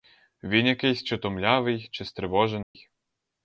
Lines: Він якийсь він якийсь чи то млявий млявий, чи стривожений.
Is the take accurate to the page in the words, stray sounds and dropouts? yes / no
no